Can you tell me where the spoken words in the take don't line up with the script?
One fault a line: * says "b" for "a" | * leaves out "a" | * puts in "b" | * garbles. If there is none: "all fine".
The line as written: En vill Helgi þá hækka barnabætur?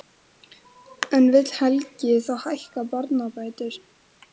all fine